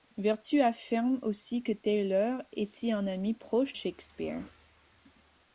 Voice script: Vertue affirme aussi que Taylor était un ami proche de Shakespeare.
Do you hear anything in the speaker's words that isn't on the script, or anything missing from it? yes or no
yes